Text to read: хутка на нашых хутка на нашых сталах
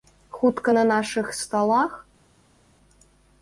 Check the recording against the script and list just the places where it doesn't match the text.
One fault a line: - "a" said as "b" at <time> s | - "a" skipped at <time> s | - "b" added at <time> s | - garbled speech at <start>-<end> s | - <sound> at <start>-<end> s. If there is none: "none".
- "хутка на нашых" skipped at 1.3 s